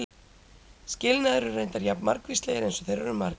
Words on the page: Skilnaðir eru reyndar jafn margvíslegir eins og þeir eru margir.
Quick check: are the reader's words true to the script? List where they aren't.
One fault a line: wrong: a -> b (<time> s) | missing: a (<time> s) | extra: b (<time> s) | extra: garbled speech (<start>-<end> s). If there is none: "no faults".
no faults